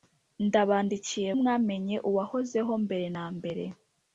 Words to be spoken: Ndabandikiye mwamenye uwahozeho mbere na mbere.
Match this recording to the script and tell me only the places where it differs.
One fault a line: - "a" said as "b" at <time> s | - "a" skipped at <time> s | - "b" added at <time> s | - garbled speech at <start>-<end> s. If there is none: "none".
none